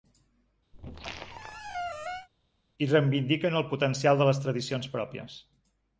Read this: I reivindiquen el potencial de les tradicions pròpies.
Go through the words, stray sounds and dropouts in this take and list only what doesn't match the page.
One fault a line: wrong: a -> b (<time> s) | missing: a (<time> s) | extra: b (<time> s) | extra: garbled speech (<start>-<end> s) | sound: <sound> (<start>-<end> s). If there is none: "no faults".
sound: squeak (0.7-2.3 s)